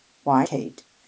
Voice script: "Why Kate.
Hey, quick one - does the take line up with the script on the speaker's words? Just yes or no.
yes